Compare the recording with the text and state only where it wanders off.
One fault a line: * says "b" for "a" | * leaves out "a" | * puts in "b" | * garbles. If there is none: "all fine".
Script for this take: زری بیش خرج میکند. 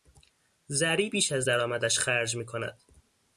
* puts in "از درآمدش"